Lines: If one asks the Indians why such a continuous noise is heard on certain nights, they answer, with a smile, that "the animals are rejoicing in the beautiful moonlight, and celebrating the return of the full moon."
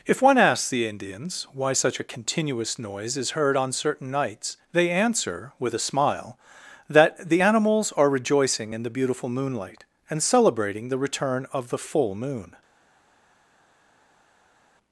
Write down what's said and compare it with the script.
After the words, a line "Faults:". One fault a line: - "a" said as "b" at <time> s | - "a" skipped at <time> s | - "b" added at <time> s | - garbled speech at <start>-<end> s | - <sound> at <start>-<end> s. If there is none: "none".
If one asks the Indians why such a continuous noise is heard on certain nights, they answer, with a smile, that "the animals are rejoicing in the beautiful moonlight, and celebrating the return of the full moon."
Faults:
none